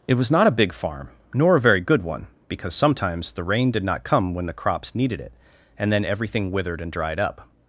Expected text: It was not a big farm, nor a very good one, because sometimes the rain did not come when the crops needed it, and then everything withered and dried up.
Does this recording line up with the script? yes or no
yes